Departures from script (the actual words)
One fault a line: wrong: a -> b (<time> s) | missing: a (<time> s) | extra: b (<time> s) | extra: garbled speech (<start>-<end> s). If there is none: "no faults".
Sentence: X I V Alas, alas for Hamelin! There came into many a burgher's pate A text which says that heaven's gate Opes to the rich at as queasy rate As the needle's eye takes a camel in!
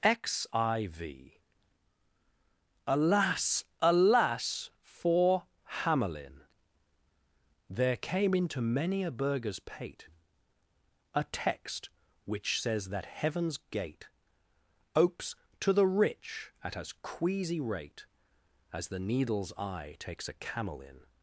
no faults